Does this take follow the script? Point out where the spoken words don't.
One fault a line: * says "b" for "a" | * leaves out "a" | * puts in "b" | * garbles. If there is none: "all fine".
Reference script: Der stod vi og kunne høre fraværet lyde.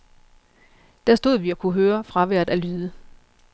* puts in "af"